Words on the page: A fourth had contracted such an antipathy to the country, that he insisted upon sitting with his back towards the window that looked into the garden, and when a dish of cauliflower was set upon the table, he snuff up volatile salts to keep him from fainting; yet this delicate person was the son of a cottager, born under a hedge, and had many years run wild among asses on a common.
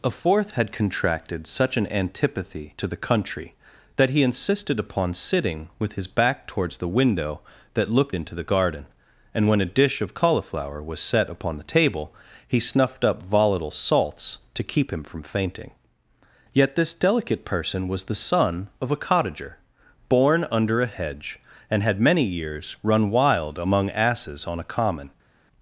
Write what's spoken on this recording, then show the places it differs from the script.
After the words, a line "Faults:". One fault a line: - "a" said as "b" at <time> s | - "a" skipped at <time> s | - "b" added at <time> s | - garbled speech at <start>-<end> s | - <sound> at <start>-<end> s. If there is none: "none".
A fourth had contracted such an antipathy to the country, that he insisted upon sitting with his back towards the window that looked into the garden, and when a dish of cauliflower was set upon the table, he snuffed up volatile salts to keep him from fainting; yet this delicate person was the son of a cottager, born under a hedge, and had many years run wild among asses on a common.
Faults:
- "snuff" said as "snuffed" at 12.6 s